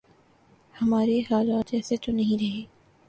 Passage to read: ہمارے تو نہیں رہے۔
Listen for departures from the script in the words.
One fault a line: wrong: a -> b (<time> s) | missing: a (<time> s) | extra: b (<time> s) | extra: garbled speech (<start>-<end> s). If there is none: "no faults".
extra: حالات ایسے (1.2 s)